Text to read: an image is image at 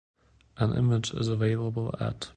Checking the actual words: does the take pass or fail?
fail